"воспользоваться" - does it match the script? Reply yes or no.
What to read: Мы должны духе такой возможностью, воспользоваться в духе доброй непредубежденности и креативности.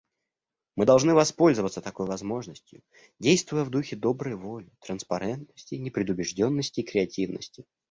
no